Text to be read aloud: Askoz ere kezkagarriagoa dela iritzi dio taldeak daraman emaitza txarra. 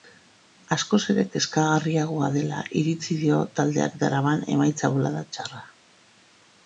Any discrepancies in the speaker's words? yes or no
yes